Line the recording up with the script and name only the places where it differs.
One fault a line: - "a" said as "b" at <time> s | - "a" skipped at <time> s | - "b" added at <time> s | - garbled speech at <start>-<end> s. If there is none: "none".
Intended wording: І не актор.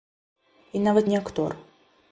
- "нават" added at 0.8 s